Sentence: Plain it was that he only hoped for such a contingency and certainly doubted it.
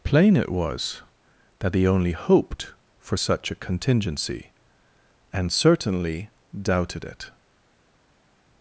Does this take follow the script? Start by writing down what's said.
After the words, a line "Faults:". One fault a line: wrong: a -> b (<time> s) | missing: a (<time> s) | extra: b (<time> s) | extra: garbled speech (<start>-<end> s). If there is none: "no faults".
Plain it was that he only hoped for such a contingency and certainly doubted it.
Faults:
no faults